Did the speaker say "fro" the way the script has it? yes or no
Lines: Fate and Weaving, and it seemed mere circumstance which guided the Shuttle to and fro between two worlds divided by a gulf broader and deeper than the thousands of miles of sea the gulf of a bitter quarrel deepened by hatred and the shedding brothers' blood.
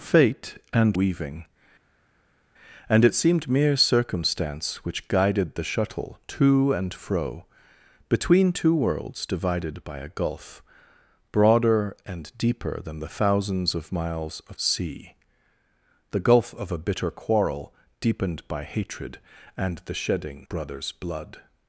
yes